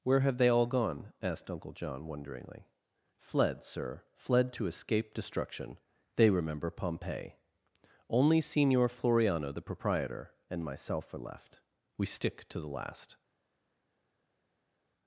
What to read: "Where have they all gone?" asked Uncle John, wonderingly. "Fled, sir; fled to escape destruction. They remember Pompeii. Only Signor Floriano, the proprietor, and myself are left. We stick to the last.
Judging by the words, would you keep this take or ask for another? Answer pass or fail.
pass